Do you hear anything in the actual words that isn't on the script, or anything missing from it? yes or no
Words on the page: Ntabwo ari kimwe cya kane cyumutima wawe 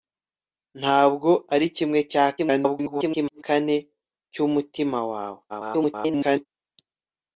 yes